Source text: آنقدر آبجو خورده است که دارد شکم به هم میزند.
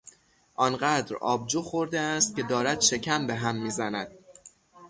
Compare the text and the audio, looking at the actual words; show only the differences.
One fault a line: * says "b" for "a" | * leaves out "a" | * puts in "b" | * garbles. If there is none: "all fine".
all fine